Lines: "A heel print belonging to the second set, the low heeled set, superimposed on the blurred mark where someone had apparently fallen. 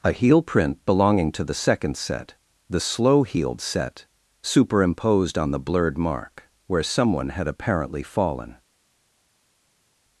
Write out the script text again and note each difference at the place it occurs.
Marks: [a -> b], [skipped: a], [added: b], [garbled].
"A heel print belonging to the second set, the [low -> slow] heeled set, superimposed on the blurred mark where someone had apparently fallen.